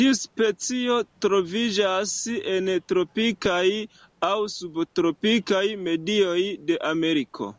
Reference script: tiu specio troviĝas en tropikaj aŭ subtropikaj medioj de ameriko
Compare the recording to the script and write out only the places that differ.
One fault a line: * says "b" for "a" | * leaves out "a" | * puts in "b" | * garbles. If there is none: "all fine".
all fine